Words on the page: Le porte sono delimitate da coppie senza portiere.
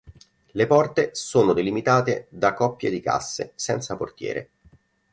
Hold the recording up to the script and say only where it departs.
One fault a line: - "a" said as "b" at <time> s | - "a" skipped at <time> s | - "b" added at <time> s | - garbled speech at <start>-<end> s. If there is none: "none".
- "di casse" added at 2.9 s